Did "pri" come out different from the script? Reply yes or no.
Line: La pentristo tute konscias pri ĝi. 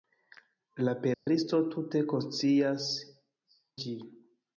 yes